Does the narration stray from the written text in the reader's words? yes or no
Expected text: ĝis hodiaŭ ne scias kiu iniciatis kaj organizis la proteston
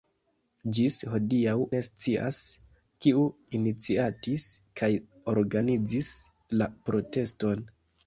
no